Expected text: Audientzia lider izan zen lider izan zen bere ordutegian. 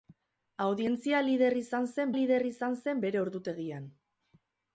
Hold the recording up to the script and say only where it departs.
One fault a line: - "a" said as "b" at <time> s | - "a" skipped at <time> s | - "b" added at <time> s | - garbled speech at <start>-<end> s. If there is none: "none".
none